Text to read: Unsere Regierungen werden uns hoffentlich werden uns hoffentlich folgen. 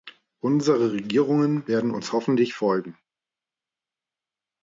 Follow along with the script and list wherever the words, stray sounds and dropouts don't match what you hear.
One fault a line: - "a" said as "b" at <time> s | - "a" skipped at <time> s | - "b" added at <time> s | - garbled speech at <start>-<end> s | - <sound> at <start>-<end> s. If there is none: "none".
- "werden uns hoffentlich" skipped at 2.5 s